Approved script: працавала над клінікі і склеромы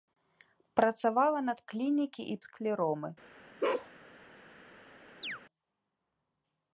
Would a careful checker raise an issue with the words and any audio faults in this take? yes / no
yes